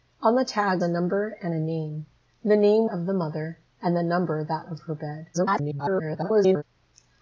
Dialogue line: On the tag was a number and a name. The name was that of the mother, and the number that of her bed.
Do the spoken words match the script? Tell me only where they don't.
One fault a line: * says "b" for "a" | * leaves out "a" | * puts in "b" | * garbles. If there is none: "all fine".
* leaves out "was"
* leaves out "was that"
* garbles